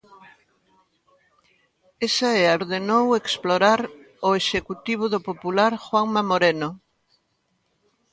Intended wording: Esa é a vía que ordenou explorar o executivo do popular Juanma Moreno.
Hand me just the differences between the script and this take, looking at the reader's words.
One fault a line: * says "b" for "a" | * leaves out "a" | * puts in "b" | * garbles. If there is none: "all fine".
* leaves out "vía que"